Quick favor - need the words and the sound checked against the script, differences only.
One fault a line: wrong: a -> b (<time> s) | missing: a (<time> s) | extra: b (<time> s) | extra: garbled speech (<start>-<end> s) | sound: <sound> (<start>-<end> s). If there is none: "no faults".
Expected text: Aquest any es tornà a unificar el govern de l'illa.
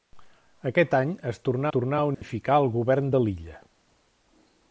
extra: tornà (1.8 s)
sound: dropout (2.1-2.2 s)